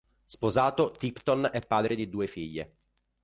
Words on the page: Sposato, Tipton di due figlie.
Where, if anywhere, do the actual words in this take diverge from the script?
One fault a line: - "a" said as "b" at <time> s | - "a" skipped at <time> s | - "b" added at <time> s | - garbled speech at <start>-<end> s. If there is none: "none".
- "è padre" added at 1.5 s